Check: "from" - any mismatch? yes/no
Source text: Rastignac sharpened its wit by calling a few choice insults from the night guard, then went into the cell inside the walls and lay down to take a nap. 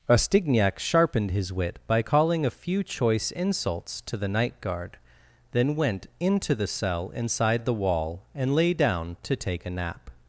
yes